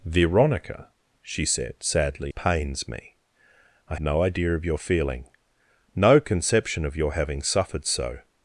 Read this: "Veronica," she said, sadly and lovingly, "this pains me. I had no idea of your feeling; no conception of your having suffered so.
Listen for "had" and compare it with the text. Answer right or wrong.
wrong